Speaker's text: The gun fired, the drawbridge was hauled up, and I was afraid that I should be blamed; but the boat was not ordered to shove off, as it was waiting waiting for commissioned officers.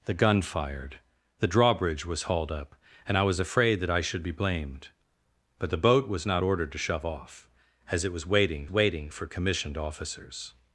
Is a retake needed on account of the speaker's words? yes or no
no